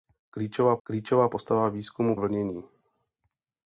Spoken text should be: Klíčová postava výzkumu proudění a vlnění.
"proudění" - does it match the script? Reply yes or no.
no